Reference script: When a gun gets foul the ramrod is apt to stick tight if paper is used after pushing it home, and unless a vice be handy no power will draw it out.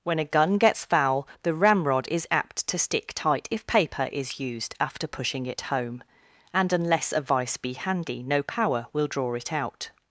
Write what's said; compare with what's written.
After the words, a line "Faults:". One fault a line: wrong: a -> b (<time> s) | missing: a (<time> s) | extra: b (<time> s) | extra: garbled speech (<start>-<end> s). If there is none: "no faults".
When a gun gets foul the ramrod is apt to stick tight if paper is used after pushing it home, and unless a vice be handy no power will draw it out.
Faults:
no faults